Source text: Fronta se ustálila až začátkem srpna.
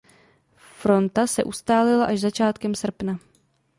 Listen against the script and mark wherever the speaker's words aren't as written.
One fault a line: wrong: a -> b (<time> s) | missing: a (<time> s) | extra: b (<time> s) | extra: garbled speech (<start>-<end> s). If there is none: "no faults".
no faults